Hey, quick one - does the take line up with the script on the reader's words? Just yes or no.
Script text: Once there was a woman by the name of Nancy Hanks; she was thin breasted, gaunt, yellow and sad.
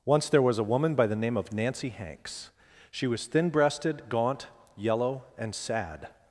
yes